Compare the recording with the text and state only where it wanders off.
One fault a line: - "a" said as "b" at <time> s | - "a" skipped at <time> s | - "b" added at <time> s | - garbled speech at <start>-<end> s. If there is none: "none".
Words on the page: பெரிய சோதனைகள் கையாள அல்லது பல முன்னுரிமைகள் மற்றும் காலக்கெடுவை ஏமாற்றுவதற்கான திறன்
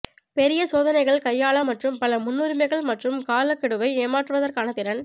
- "அல்லது" said as "மற்றும்" at 1.7 s